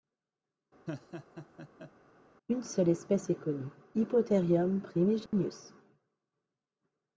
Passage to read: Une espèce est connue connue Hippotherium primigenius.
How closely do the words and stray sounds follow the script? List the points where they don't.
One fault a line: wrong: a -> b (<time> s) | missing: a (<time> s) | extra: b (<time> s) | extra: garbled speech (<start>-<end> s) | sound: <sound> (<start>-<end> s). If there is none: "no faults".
sound: laugh (0.9-1.9 s)
extra: seule (2.6 s)
missing: connue (3.7 s)
sound: dropout (5.3-5.3 s)